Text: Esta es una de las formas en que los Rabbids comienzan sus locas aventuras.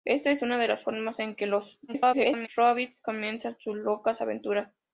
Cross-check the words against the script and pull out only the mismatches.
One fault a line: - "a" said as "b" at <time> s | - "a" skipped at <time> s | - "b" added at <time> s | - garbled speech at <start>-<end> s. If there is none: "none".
- garbled speech at 1.9-2.5 s